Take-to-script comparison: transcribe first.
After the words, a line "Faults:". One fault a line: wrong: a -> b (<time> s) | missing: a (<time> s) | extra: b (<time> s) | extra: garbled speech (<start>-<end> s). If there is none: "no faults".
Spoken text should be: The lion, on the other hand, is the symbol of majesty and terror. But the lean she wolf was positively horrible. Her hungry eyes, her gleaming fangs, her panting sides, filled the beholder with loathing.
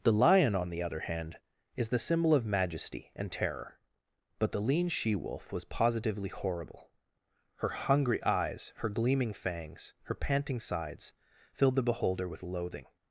The lion, on the other hand, is the symbol of majesty and terror. But the lean she wolf was positively horrible. Her hungry eyes, her gleaming fangs, her panting sides, filled the beholder with loathing.
Faults:
no faults